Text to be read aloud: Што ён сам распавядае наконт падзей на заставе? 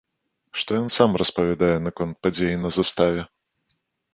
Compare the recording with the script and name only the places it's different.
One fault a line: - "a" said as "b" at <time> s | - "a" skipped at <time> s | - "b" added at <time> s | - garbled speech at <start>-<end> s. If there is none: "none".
none